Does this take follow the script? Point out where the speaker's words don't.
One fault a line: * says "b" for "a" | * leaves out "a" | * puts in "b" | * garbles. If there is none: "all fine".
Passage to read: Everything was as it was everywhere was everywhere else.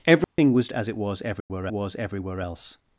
all fine